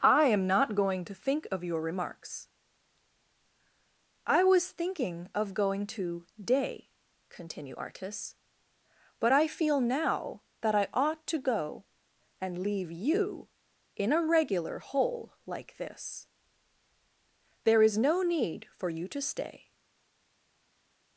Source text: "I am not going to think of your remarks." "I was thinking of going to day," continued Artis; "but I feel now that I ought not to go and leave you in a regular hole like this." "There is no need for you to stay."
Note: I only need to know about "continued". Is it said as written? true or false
false